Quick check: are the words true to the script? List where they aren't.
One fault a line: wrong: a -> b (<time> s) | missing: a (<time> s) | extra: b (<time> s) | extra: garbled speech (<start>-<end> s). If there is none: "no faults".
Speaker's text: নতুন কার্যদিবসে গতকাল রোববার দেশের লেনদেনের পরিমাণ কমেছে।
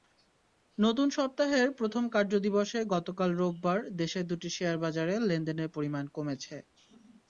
extra: সপ্তাহের প্রথম (1.2 s)
extra: দুটি শেয়ারবাজারে (4.3 s)